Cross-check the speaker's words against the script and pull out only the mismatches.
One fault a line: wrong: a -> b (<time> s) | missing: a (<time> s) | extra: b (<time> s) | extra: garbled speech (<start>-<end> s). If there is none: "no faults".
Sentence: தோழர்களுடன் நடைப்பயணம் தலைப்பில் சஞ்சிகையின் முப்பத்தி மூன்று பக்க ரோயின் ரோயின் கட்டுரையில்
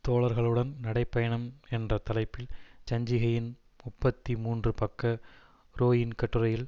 extra: என்ற (1.7 s)
missing: ரோயின் (6.1 s)